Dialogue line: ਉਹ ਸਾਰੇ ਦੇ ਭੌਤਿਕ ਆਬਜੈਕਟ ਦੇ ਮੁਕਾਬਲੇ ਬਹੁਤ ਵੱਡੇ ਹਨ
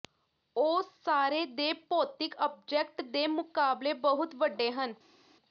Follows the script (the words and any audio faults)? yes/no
yes